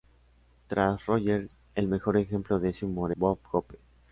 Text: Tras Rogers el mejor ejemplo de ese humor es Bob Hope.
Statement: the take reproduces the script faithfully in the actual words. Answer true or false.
false